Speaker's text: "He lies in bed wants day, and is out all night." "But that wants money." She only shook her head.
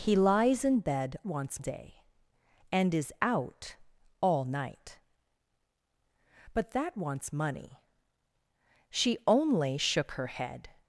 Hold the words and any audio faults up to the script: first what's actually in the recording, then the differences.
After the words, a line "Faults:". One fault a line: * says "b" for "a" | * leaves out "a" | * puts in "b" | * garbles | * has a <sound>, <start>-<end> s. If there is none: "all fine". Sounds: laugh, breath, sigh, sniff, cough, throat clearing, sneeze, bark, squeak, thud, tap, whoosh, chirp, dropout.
"He lies in bed wants day, and is out all night." "But that wants money." She only shook her head.
Faults:
all fine